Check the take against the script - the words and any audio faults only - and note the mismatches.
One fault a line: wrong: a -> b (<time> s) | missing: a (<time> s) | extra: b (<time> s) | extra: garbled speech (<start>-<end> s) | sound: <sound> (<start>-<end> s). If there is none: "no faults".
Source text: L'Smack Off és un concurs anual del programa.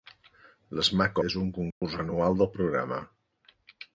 missing: Off (1.2 s)
sound: dropout (1.7-1.8 s)